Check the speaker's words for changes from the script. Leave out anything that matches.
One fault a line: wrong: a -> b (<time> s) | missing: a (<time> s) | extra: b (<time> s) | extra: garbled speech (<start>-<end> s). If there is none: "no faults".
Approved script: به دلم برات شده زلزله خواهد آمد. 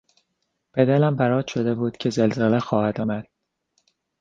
extra: بود که (1.8 s)